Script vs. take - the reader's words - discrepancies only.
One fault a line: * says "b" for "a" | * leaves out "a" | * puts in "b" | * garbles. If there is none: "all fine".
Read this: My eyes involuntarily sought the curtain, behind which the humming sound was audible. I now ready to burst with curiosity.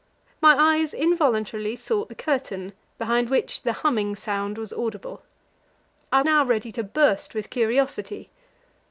all fine